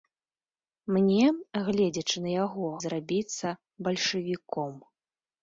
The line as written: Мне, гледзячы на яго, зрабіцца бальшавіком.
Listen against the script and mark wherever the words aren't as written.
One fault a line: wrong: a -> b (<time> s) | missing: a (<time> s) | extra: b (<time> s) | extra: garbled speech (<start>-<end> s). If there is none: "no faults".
no faults